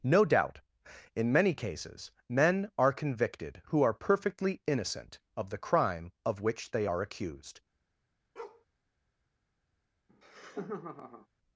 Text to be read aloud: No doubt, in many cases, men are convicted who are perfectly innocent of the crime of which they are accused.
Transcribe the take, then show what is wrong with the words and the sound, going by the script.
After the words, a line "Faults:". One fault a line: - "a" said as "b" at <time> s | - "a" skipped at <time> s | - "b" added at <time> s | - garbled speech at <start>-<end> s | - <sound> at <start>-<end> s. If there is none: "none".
No doubt, in many cases, men are convicted who are perfectly innocent of the crime of which they are accused.
Faults:
- bark at 8.4-8.7 s
- laugh at 10.1-11.3 s